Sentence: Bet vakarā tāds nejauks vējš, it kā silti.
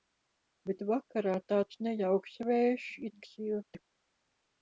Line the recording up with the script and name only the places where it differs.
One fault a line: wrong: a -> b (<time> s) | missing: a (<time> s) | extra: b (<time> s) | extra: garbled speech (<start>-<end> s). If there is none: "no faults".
missing: kā (3.2 s)